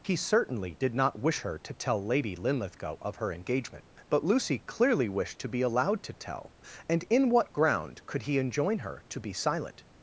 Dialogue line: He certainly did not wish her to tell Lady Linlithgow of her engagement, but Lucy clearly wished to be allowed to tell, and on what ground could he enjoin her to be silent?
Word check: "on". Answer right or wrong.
wrong